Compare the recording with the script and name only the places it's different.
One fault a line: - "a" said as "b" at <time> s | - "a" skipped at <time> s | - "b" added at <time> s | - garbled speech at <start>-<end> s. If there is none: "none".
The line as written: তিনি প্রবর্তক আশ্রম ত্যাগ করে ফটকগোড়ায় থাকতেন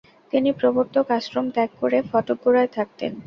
none